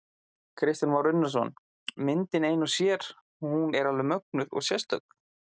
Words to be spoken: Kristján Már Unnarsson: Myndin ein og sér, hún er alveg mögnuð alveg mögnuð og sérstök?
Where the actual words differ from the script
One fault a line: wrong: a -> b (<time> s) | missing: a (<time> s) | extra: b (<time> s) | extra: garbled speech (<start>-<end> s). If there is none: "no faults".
missing: alveg mögnuð (4.5 s)